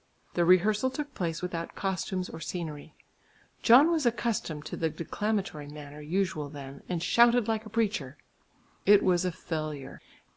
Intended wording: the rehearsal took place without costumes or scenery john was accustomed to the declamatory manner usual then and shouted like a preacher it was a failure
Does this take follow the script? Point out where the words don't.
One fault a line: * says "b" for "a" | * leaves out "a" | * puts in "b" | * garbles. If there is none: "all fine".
all fine